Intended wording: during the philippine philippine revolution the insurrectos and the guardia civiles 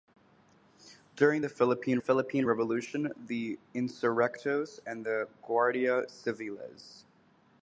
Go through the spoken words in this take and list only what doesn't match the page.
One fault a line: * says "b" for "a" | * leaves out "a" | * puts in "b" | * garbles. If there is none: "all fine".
all fine